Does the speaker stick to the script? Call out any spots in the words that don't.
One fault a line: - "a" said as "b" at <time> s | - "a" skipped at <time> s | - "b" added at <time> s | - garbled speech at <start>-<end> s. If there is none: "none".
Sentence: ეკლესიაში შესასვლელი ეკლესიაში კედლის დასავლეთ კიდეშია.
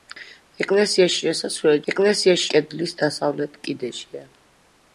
none